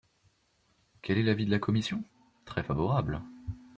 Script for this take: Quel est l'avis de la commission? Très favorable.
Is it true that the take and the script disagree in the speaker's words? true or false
false